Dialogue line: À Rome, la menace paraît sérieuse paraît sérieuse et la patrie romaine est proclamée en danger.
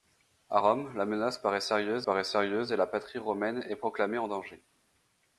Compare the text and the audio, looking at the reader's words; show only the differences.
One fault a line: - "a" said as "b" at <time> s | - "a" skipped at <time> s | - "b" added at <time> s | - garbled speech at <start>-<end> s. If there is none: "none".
none